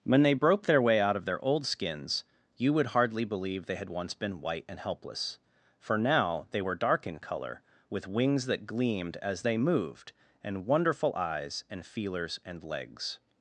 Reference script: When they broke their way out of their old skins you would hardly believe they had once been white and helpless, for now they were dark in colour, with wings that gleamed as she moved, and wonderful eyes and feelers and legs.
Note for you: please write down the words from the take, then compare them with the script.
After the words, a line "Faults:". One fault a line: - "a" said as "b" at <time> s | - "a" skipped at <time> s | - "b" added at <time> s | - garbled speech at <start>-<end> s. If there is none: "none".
When they broke their way out of their old skins you would hardly believe they had once been white and helpless, for now they were dark in colour, with wings that gleamed as they moved, and wonderful eyes and feelers and legs.
Faults:
- "she" said as "they" at 9.4 s